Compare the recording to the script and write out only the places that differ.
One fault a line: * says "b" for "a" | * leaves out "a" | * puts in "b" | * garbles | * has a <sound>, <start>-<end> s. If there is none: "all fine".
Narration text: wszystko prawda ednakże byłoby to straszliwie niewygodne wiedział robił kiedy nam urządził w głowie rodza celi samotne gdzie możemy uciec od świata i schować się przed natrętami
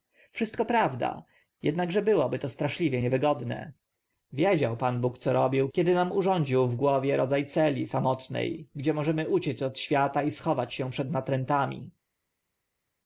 * puts in "pan bóg co"